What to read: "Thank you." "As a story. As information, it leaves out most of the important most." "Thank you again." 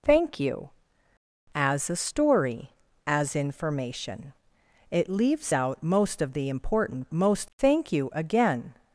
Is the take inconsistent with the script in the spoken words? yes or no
no